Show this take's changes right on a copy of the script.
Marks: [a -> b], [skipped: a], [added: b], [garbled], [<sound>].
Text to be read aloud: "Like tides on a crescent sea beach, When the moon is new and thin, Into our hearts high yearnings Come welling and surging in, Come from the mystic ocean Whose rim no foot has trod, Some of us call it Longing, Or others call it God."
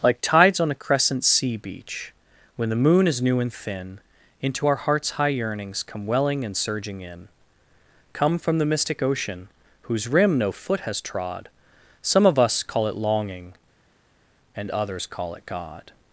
"Like tides on a crescent sea beach, When the moon is new and thin, Into our hearts high yearnings Come welling and surging in, Come from the mystic ocean Whose rim no foot has trod, Some of us call it Longing, [Or -> And] others call it God."